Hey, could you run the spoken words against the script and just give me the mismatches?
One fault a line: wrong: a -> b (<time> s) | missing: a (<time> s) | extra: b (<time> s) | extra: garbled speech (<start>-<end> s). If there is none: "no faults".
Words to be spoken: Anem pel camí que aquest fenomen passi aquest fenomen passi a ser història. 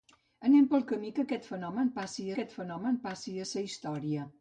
no faults